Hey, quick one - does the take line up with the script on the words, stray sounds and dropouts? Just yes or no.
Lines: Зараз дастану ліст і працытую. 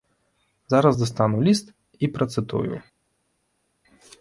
yes